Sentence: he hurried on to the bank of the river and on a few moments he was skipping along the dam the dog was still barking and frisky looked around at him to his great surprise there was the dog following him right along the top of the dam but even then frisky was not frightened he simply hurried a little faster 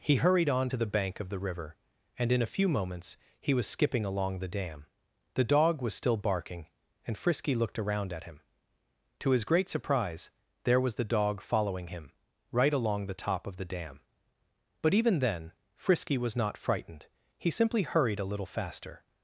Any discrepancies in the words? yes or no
yes